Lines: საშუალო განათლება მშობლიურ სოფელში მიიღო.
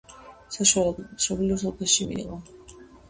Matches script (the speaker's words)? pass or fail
fail